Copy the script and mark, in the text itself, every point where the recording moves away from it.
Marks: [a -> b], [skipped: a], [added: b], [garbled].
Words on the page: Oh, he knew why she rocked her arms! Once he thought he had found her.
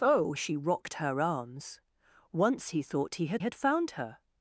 Oh, [skipped: he knew why] she rocked her arms! Once he thought he had [added: had] found her.